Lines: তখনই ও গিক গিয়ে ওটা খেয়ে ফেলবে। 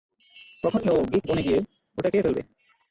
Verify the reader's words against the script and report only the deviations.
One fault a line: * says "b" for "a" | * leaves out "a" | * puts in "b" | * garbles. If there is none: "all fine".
* puts in "বনে"